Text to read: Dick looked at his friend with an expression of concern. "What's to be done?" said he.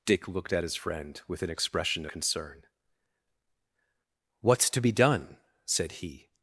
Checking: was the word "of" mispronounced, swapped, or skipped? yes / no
yes